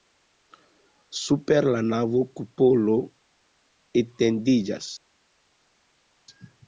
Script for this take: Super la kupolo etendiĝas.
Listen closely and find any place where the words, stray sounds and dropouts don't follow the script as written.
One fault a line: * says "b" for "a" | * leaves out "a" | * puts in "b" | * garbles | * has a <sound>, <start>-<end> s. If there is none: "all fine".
* puts in "navo"